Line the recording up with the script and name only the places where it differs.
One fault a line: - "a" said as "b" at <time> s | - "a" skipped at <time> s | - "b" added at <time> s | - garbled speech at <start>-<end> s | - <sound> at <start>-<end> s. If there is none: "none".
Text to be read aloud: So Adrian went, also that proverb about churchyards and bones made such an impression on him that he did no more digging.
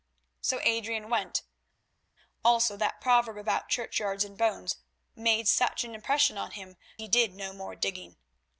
- "that" skipped at 6.8 s